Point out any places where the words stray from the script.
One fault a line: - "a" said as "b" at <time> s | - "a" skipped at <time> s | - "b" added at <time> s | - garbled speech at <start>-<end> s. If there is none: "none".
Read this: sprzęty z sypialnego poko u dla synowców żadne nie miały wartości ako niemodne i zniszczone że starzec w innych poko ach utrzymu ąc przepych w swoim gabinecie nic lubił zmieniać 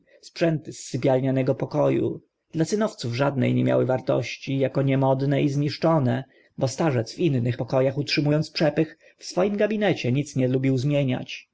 - "że" said as "bo" at 6.6 s
- "nie" added at 10.4 s